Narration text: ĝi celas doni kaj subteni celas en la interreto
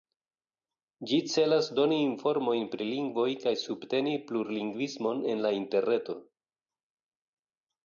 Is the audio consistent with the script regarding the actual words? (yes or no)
no